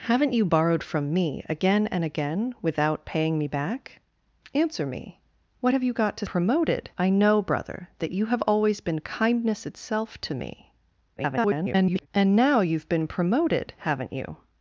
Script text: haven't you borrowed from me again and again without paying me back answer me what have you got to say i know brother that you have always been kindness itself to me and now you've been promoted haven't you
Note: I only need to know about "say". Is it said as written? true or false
false